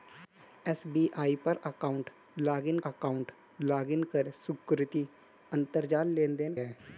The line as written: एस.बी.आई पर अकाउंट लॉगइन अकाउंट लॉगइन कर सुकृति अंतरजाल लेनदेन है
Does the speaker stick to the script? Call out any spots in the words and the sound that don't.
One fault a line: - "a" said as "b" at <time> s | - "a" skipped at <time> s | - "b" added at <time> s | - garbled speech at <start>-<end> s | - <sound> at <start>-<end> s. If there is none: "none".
none